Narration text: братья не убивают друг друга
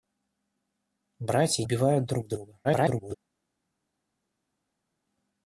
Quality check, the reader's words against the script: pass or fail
fail